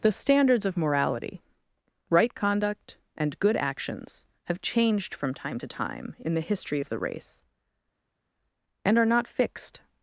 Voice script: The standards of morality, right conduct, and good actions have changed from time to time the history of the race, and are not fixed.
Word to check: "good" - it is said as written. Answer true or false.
true